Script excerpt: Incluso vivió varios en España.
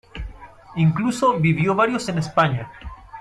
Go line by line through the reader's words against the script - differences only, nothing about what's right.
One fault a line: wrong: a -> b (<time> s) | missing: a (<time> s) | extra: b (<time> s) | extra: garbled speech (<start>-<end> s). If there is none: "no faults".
no faults